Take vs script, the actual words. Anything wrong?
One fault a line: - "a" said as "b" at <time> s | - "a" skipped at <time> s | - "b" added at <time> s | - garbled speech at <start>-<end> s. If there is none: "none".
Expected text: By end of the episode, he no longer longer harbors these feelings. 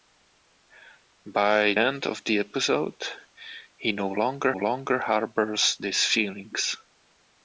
none